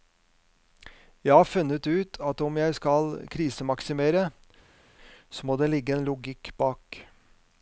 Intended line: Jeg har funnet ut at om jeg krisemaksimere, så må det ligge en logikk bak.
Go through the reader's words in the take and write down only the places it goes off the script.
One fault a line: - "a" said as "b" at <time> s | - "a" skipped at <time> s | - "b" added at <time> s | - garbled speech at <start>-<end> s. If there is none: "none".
- "skal" added at 2.7 s